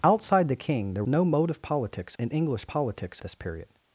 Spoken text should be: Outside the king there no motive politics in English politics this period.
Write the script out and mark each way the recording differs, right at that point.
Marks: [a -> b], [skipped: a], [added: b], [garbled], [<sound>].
Outside the king there no motive politics in English politics this period.